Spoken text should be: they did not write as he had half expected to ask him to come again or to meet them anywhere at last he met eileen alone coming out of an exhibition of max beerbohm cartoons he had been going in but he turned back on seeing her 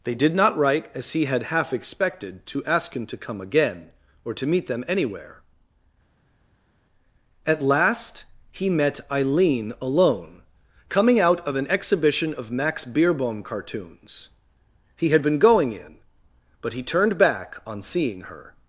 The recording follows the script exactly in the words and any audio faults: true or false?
true